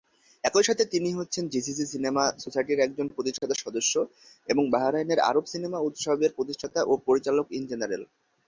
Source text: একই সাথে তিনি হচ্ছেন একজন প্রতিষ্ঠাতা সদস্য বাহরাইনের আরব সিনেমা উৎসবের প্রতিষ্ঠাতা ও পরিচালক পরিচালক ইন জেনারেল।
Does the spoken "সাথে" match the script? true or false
true